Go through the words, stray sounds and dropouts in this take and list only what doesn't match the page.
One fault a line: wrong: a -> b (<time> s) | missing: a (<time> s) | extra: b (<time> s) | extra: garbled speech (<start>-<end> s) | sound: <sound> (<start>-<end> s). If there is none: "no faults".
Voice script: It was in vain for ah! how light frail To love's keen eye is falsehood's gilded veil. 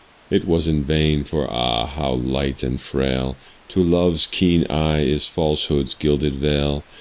extra: and (2.6 s)